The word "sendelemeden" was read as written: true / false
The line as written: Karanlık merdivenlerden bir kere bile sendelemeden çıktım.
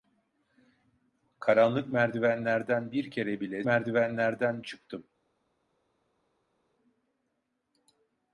false